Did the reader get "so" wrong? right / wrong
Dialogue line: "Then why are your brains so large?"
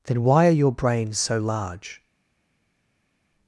right